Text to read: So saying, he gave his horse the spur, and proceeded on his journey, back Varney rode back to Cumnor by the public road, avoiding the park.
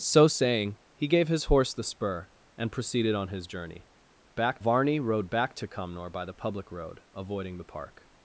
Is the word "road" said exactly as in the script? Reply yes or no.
yes